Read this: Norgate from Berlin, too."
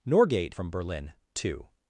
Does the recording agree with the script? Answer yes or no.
yes